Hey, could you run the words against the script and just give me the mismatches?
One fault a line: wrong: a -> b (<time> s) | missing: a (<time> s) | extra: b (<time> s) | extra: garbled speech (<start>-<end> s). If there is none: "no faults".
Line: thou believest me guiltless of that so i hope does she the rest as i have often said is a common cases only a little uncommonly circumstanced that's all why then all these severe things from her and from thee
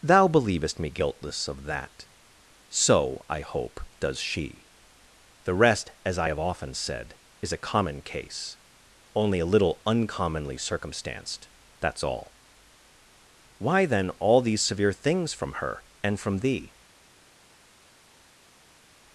wrong: cases -> case (8.0 s)